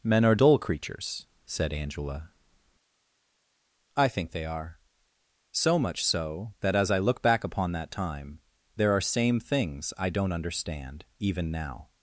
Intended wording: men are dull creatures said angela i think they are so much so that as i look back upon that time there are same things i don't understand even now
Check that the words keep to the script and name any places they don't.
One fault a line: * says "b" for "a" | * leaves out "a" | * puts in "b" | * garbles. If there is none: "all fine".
all fine